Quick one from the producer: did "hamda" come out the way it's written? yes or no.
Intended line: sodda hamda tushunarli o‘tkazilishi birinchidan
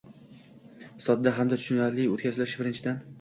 yes